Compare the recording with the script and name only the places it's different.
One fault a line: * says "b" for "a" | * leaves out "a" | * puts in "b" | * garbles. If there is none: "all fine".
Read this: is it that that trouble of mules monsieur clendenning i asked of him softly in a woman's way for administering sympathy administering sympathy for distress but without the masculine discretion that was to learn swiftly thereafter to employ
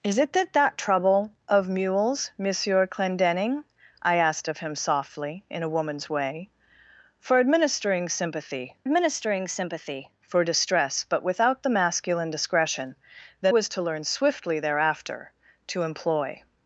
all fine